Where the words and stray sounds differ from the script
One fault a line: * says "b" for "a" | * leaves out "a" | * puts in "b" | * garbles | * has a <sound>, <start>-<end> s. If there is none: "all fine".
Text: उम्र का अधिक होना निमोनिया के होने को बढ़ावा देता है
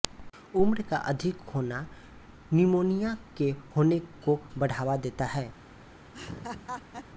* has a laugh, 6.1-7.1 s